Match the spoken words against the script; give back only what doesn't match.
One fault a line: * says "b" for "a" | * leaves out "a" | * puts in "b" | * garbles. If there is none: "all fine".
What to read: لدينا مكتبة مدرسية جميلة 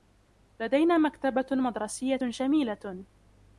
all fine